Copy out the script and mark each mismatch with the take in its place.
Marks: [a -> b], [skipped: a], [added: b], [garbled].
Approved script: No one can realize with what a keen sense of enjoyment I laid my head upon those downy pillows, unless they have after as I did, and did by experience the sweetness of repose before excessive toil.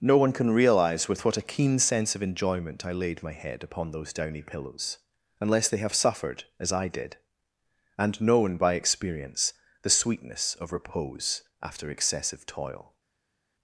No one can realize with what a keen sense of enjoyment I laid my head upon those downy pillows, unless they have [after -> suffered] as I did, and [did -> known] by experience the sweetness of repose [before -> after] excessive toil.